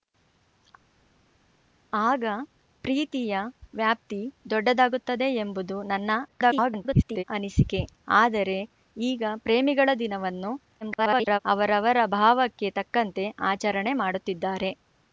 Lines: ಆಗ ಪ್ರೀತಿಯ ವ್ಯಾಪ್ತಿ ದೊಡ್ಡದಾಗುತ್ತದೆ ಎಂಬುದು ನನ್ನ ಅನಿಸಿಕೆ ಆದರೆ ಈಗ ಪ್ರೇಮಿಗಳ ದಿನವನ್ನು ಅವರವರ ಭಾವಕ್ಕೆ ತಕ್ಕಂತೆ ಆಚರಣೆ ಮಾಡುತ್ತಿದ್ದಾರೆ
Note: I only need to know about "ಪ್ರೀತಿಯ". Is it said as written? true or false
true